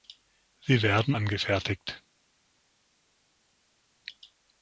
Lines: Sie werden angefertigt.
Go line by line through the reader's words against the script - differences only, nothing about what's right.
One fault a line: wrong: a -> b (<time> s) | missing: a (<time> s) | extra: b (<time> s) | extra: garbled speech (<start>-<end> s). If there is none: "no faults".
no faults